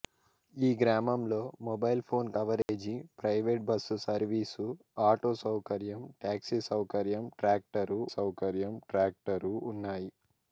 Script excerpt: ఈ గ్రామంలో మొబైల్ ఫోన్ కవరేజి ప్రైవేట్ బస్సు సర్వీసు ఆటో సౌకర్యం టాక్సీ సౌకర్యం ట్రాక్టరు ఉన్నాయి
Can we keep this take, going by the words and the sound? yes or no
no